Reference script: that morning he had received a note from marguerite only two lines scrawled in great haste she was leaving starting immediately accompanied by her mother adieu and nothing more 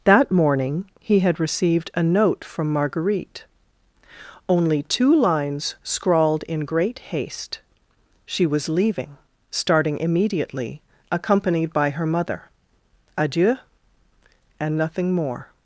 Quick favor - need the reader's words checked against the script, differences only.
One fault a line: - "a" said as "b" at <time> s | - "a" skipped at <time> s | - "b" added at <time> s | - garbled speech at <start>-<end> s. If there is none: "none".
none